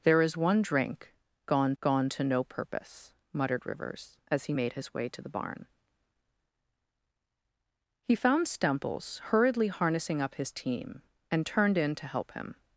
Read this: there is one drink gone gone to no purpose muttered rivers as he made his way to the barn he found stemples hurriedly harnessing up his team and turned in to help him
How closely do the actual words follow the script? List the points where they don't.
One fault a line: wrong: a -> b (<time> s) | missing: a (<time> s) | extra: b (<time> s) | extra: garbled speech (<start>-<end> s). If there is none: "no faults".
no faults